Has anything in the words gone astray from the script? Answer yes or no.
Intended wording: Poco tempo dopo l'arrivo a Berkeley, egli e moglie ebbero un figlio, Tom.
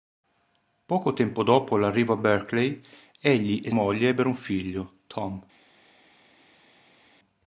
no